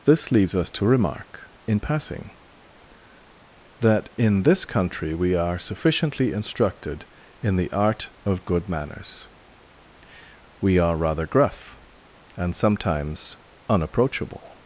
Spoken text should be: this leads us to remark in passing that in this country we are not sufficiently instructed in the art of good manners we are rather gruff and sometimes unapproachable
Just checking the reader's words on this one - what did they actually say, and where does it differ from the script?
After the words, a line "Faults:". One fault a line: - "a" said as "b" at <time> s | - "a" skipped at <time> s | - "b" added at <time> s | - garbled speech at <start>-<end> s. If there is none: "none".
this leads us to remark in passing that in this country we are sufficiently instructed in the art of good manners we are rather gruff and sometimes unapproachable
Faults:
- "not" skipped at 5.6 s